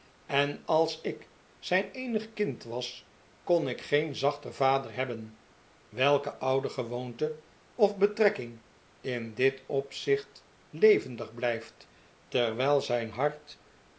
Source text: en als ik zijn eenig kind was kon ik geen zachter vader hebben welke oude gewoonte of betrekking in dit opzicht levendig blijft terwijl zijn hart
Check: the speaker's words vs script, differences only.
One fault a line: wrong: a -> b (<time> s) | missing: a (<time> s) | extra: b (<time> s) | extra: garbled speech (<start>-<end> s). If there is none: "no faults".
no faults